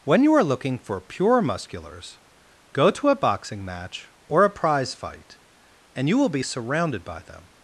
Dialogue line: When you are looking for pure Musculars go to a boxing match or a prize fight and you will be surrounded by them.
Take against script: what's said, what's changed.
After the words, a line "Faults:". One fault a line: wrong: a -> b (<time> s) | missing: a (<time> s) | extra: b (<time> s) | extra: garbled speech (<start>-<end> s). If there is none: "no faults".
When you are looking for pure Musculars go to a boxing match or a prize fight and you will be surrounded by them.
Faults:
no faults